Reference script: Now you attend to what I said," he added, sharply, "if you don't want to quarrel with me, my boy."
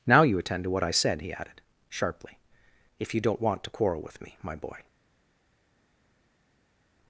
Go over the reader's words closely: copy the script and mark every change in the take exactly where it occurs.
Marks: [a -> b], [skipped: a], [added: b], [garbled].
Now you attend to what I said," he added, sharply, "if you don't want to quarrel with me, my boy."